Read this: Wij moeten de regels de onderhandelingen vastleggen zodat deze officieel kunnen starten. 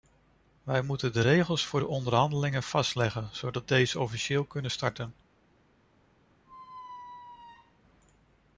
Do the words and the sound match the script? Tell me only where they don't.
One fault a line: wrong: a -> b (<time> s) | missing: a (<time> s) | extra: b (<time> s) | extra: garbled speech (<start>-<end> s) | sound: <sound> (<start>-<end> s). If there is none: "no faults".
extra: voor (1.7 s)
sound: squeak (6.4-7.8 s)